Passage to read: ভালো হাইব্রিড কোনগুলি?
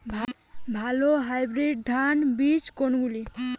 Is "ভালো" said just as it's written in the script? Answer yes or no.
yes